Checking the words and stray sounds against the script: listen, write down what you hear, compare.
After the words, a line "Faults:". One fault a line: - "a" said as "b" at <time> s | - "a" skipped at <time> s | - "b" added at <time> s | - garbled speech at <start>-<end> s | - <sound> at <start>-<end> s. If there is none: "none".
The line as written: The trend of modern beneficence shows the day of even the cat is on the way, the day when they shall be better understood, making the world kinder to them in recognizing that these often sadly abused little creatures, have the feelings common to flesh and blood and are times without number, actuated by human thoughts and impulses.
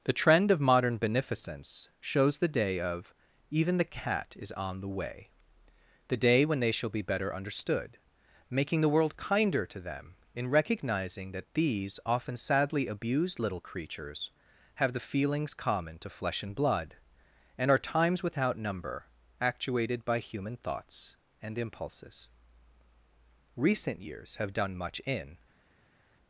The trend of modern beneficence shows the day of even the cat is on the way, the day when they shall be better understood, making the world kinder to them in recognizing that these often sadly abused little creatures, have the feelings common to flesh and blood and are times without number, actuated by human thoughts and impulses. Recent years have done much in
Faults:
- "Recent years have done much in" added at 23.5 s